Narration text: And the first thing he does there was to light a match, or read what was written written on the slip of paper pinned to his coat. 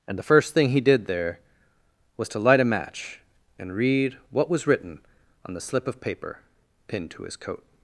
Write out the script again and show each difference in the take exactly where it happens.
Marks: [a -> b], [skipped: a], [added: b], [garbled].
And the first thing he [does -> did] there was to light a match, [or -> and] read what was written [skipped: written] on the slip of paper pinned to his coat.